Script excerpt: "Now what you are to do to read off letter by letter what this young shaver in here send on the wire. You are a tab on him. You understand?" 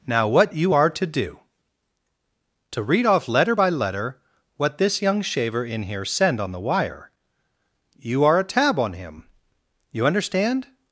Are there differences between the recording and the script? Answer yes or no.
no